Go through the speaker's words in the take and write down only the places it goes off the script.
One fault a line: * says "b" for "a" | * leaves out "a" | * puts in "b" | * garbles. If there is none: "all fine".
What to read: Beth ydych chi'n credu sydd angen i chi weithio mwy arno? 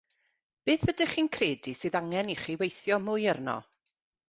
all fine